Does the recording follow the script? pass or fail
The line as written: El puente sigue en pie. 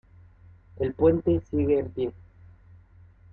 pass